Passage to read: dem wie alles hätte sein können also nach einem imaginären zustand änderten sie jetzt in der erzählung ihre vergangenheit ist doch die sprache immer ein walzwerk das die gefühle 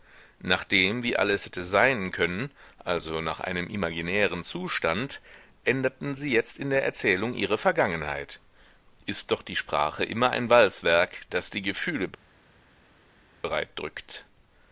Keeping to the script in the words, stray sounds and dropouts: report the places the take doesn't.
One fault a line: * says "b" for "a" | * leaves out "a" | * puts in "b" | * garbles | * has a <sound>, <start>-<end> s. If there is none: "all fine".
all fine